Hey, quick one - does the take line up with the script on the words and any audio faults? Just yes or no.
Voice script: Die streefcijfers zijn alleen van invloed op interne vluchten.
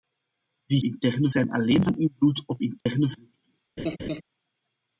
no